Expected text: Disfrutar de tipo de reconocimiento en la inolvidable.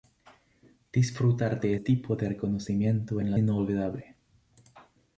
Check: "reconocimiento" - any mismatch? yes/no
no